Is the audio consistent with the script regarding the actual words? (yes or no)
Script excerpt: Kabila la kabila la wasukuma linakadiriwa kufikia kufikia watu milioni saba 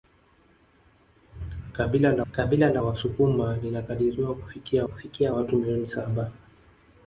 yes